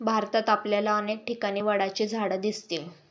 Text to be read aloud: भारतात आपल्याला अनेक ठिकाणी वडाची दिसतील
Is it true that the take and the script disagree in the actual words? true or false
true